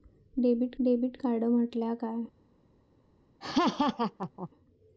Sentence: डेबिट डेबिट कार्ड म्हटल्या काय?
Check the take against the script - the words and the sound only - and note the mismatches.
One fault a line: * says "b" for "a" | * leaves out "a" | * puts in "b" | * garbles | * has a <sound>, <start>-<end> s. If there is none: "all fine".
* has a laugh, 3.4-4.5 s